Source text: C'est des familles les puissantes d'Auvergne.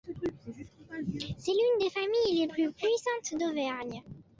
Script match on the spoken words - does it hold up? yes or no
no